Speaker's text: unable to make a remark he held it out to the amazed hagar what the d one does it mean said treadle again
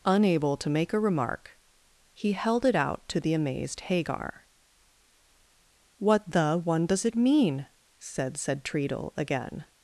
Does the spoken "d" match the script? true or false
false